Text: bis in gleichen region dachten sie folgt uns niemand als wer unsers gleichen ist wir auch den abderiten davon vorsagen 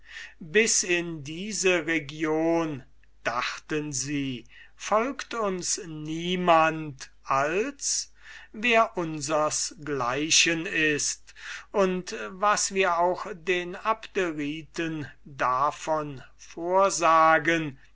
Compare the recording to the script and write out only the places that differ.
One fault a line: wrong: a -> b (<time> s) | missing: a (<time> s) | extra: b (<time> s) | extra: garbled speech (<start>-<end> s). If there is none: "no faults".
wrong: gleichen -> diese (1.2 s)
extra: und was (11.7 s)